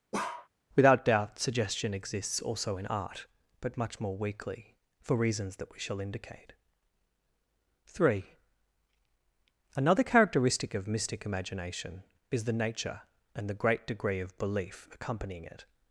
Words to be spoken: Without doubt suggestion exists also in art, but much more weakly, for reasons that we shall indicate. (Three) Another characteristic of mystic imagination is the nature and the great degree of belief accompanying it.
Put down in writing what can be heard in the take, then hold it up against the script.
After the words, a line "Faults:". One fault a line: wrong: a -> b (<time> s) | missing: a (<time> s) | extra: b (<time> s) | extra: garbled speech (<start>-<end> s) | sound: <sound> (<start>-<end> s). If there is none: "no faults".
Without doubt suggestion exists also in art, but much more weakly, for reasons that we shall indicate. (Three) Another characteristic of mystic imagination is the nature and the great degree of belief accompanying it.
Faults:
sound: bark (0.1-0.5 s)